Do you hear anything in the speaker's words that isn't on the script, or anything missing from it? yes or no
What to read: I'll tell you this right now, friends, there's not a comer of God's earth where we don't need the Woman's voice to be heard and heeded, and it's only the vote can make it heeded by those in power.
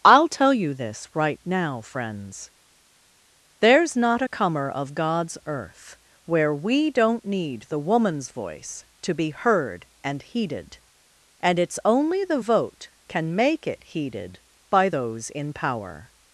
no